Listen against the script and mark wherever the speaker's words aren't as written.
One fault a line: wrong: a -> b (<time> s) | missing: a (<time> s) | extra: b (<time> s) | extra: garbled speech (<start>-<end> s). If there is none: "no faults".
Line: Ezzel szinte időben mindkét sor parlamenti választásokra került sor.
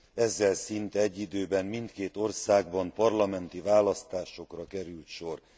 extra: egy (1.0 s)
wrong: sor -> országban (2.2 s)